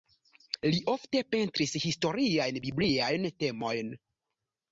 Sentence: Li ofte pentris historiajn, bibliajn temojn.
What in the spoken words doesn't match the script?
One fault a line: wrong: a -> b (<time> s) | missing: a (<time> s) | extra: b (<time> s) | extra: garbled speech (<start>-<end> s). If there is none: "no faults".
no faults